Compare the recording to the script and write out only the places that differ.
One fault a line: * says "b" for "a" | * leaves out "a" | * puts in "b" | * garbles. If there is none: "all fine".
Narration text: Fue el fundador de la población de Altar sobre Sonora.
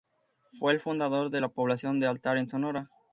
* says "en" for "sobre"